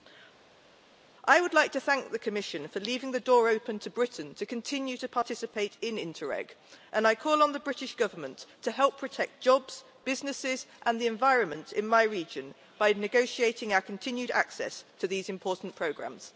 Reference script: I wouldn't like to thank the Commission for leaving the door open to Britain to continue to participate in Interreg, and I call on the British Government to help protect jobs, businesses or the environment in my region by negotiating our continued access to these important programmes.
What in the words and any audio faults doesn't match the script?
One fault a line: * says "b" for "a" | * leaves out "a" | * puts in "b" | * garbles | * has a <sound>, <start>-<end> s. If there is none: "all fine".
* says "would" for "wouldn't"
* says "and" for "or"